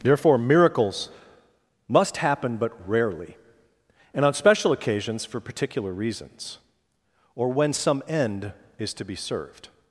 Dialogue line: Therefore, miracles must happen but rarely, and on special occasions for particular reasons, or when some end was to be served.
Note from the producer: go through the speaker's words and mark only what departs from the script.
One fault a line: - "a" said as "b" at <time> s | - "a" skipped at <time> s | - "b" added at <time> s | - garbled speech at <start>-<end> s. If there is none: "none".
- "was" said as "is" at 8.8 s